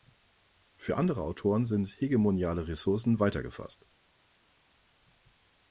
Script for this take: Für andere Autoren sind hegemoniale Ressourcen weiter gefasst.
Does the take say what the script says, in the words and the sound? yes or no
yes